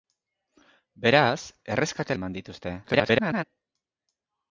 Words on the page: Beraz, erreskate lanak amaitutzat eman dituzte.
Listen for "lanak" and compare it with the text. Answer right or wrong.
wrong